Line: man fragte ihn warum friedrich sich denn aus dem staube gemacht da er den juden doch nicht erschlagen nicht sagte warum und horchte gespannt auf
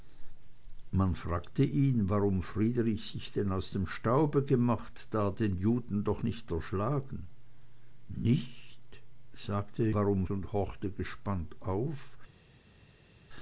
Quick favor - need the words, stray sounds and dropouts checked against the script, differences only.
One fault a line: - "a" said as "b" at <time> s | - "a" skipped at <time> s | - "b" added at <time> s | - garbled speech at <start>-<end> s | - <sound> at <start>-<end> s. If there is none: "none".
none